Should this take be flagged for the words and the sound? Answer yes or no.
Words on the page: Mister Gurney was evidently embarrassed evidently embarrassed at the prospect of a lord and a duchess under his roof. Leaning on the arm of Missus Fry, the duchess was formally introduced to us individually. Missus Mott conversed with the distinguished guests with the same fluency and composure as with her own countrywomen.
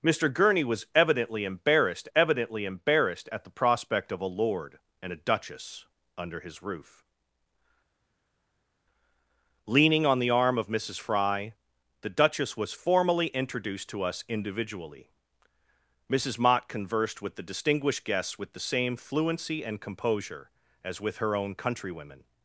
no